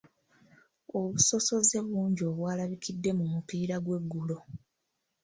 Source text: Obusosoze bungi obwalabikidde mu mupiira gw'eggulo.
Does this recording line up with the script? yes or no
yes